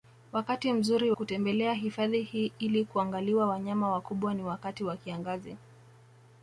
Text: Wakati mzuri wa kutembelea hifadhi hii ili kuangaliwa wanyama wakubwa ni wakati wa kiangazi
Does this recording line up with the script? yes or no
no